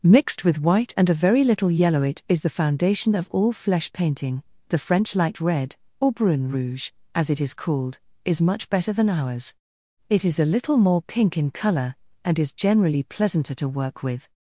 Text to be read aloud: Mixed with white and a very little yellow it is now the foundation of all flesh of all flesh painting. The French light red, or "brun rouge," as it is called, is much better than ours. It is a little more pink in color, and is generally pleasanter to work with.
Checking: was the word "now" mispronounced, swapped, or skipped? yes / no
yes